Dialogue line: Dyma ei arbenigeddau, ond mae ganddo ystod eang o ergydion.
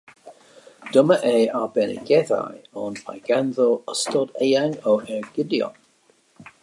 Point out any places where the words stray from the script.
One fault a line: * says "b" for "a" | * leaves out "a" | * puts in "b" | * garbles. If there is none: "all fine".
all fine